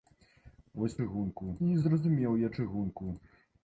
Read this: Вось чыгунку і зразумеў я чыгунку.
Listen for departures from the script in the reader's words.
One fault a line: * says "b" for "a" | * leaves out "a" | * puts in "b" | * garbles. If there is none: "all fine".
all fine